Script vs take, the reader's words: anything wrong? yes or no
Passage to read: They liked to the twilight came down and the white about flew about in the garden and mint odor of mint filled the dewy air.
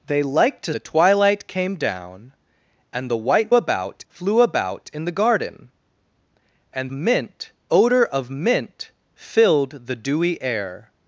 no